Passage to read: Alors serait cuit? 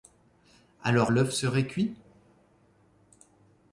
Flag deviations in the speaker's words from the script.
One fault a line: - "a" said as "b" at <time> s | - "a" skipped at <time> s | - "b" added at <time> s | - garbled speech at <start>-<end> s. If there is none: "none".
- "l'œuf" added at 1.1 s